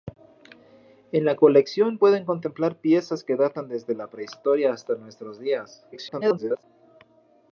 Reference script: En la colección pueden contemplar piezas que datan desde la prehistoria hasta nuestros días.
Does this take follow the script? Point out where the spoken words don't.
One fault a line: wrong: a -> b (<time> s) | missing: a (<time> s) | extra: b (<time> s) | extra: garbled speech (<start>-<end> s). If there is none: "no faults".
extra: garbled speech (5.9-6.6 s)